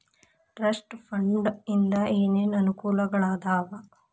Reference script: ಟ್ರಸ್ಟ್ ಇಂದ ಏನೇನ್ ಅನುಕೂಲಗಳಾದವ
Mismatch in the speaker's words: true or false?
true